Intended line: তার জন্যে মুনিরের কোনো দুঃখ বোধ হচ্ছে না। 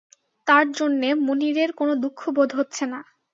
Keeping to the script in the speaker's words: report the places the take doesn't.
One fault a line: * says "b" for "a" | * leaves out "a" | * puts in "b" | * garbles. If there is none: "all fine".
all fine